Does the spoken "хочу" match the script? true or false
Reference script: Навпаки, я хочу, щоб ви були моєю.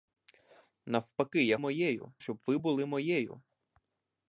false